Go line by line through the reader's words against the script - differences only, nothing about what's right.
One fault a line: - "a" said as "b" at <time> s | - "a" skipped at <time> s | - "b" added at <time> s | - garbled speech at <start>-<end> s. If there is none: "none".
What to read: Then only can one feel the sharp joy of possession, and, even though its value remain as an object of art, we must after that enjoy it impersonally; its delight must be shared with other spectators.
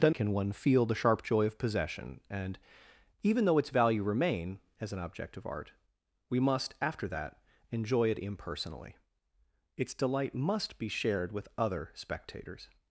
- "only" skipped at 0.1 s